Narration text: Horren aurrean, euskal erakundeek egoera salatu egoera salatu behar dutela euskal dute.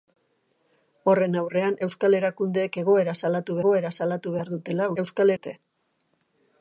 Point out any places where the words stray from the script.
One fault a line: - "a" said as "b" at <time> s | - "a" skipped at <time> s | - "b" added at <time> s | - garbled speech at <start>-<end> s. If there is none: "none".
none